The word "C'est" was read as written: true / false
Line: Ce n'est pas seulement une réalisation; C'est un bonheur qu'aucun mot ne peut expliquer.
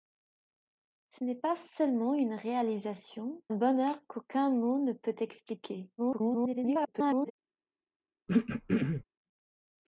false